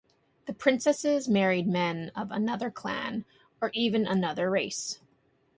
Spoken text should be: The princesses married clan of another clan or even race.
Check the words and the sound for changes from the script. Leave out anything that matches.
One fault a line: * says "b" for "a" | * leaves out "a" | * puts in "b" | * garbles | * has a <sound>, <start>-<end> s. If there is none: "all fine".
* says "men" for "clan"
* puts in "another"